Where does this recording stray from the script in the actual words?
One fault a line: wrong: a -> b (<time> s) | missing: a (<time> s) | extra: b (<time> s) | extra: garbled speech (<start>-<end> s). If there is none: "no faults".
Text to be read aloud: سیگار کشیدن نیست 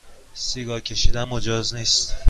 extra: مجاز (1.2 s)